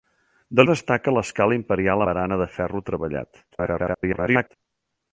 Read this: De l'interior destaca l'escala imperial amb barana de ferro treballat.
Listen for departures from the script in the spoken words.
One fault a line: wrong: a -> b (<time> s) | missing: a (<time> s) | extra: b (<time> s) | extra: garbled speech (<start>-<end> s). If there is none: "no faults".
missing: l'interior (0.6 s)
missing: amb (2.0 s)
extra: garbled speech (3.5-4.6 s)